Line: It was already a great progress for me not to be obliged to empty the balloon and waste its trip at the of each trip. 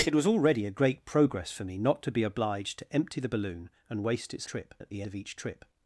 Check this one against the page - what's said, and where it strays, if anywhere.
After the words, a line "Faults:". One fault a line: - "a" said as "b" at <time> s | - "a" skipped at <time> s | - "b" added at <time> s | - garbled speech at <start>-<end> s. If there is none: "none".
It was already a great progress for me not to be obliged to empty the balloon and waste its trip at the of each trip.
Faults:
none